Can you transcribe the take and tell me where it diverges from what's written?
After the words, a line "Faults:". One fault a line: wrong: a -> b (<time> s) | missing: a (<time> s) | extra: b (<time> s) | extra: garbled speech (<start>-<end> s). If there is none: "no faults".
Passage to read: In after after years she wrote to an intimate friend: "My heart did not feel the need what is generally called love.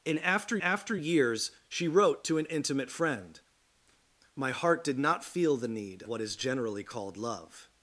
In after after years she wrote to an intimate friend: "My heart did not feel the need what is generally called love.
Faults:
no faults